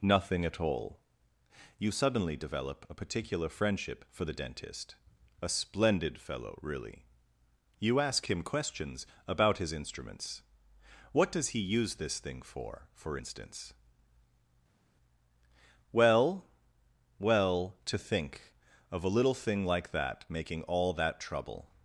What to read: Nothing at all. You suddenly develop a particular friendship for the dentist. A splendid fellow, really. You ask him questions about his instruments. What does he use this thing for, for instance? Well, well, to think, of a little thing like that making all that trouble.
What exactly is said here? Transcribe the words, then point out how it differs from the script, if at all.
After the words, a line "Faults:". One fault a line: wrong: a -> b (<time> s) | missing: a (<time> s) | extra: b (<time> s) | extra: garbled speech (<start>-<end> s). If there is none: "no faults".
Nothing at all. You suddenly develop a particular friendship for the dentist. A splendid fellow, really. You ask him questions about his instruments. What does he use this thing for, for instance? Well, well, to think, of a little thing like that making all that trouble.
Faults:
no faults